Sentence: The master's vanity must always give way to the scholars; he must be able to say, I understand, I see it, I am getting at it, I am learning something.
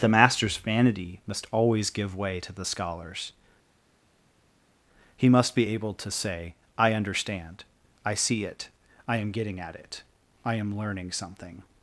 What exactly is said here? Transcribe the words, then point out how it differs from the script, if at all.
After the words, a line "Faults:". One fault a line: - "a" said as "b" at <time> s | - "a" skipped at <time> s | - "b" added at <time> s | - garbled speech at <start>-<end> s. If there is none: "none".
The master's vanity must always give way to the scholars; he must be able to say, I understand, I see it, I am getting at it, I am learning something.
Faults:
none